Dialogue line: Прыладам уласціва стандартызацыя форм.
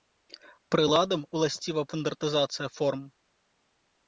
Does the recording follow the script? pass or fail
pass